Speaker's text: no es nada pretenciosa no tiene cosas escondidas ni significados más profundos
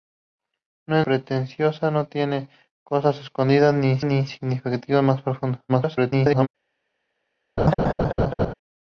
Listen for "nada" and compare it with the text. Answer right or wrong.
wrong